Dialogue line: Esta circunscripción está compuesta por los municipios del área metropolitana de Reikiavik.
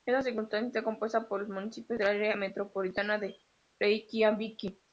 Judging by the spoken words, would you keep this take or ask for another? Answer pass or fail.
pass